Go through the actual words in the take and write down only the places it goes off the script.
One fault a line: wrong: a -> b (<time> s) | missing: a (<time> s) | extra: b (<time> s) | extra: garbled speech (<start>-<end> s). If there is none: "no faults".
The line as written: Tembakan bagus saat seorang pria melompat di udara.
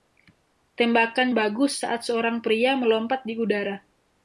no faults